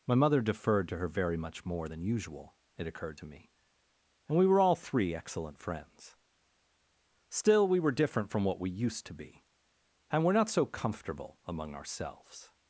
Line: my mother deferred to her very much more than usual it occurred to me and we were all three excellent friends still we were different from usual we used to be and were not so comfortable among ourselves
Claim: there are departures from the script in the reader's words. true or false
true